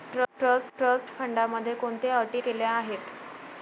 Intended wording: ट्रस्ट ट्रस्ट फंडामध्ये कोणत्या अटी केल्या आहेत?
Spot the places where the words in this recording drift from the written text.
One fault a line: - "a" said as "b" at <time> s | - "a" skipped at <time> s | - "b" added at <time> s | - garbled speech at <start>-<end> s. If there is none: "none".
none